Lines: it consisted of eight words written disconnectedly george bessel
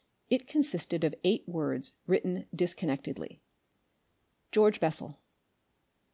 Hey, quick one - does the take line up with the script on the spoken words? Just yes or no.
yes